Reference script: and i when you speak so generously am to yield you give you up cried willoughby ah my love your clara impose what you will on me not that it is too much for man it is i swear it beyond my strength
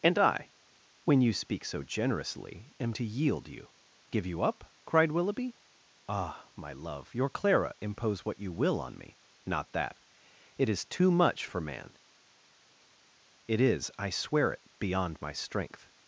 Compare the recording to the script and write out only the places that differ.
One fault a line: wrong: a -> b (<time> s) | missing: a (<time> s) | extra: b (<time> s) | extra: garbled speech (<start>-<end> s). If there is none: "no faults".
no faults